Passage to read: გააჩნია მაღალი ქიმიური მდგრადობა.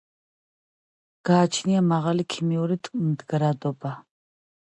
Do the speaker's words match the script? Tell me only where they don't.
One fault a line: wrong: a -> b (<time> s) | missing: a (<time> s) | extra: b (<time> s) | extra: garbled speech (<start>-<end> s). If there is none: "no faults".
no faults